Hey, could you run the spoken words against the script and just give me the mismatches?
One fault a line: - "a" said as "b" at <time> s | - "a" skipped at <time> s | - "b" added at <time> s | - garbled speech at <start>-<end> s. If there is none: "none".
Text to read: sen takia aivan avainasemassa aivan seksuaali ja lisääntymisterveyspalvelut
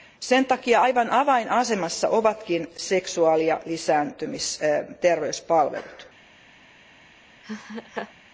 - "aivan" said as "ovatkin" at 2.1 s